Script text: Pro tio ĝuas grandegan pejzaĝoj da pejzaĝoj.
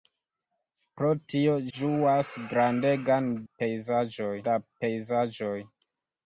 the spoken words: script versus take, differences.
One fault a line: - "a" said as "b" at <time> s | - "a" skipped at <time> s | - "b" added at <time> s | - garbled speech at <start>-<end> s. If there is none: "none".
none